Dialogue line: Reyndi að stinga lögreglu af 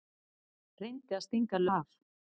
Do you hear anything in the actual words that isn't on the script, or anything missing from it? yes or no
yes